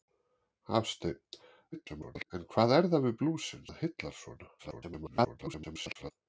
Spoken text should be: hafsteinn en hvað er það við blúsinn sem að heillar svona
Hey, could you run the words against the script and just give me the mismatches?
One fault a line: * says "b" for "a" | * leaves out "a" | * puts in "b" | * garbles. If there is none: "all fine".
* garbles
* leaves out "sem"
* garbles